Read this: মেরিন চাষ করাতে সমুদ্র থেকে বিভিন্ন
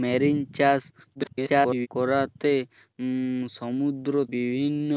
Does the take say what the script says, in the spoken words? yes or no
no